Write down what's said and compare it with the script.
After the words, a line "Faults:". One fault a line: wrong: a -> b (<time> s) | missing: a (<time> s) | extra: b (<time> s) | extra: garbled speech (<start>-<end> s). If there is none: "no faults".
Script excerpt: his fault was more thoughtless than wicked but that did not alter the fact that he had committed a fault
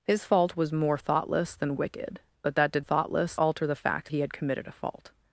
his fault was more thoughtless than wicked but that did thoughtless alter the fact he had committed a fault
Faults:
wrong: not -> thoughtless (2.8 s)
missing: that (4.1 s)